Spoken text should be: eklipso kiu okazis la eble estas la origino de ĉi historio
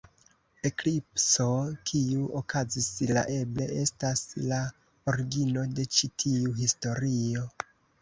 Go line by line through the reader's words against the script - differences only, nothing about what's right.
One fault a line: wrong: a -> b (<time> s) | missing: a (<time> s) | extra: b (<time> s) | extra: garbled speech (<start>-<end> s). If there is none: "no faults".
extra: tiu (6.3 s)